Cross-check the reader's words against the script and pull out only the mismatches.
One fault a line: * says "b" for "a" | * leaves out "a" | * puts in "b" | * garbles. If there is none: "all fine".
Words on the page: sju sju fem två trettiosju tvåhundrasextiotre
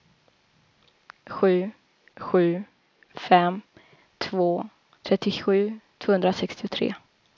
all fine